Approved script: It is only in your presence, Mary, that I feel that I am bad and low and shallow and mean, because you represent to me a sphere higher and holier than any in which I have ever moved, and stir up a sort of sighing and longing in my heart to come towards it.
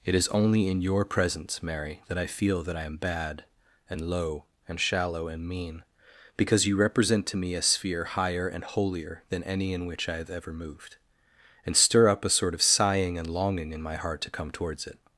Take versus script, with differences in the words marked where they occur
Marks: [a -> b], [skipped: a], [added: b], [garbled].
It is only in your presence, Mary, that I feel that I am bad and low and shallow and mean, because you represent to me a sphere higher and holier than any in which I have ever moved, and stir up a sort of sighing and longing in my heart to come towards it.